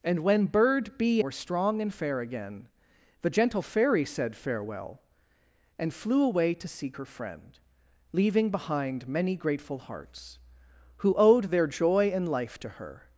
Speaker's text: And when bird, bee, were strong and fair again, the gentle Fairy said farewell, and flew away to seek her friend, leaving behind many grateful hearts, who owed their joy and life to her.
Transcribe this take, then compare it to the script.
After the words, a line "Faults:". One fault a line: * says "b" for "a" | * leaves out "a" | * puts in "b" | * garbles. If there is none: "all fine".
And when bird, bee, were strong and fair again, the gentle Fairy said farewell, and flew away to seek her friend, leaving behind many grateful hearts, who owed their joy and life to her.
Faults:
all fine